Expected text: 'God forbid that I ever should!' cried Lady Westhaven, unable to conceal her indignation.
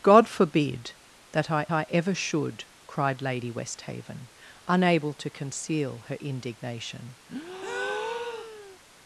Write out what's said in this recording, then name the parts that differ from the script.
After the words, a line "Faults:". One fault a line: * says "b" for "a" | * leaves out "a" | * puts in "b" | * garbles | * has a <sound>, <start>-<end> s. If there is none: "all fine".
'God forbid that I I ever should!' cried Lady Westhaven, unable to conceal her indignation.
Faults:
* puts in "I"
* has a breath, 7.3-8.8 s